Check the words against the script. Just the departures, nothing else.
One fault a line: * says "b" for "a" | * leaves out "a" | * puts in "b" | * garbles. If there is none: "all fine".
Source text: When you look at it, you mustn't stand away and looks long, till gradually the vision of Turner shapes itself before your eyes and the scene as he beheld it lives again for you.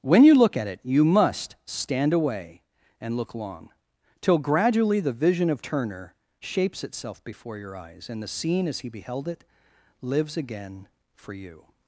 * says "must" for "mustn't"
* says "look" for "looks"